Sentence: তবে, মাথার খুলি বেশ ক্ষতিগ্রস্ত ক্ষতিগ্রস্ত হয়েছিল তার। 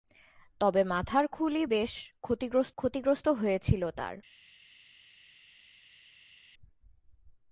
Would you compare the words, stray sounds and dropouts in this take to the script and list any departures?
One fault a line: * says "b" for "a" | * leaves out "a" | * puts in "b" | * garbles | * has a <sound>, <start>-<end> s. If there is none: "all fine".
all fine